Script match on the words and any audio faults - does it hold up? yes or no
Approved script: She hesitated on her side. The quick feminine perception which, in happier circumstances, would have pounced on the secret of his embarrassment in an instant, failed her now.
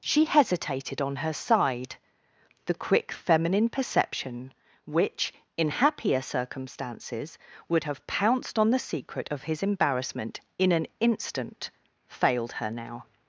yes